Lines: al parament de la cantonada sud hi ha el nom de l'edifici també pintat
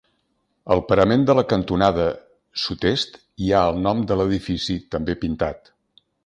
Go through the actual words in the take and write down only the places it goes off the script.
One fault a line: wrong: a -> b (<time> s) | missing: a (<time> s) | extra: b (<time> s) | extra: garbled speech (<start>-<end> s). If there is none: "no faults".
extra: est (2.9 s)